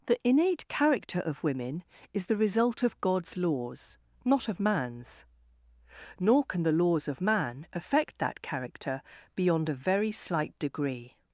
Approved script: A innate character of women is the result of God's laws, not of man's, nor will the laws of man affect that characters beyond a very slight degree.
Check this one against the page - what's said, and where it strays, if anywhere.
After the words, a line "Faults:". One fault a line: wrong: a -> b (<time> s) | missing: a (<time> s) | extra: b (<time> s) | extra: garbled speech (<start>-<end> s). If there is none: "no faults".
The innate character of women is the result of God's laws, not of man's, nor can the laws of man affect that character beyond a very slight degree.
Faults:
wrong: A -> The (0.1 s)
wrong: will -> can (6.4 s)
wrong: characters -> character (8.4 s)